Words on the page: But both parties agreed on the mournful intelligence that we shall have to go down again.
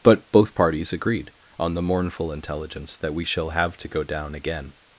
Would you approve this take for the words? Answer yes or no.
yes